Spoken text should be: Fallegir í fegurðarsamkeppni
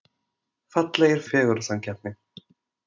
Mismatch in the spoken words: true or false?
false